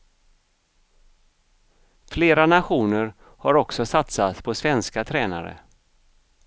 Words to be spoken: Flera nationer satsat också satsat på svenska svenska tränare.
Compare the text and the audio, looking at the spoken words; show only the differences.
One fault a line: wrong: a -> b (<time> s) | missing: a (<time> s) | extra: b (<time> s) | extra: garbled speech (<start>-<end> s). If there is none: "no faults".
wrong: satsat -> har (3.2 s)
missing: svenska (5.0 s)